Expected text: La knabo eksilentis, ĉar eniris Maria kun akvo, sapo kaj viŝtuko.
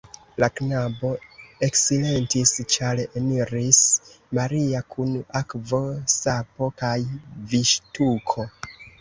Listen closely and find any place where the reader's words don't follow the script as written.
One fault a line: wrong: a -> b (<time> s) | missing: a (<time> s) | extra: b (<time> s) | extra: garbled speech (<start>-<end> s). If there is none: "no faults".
no faults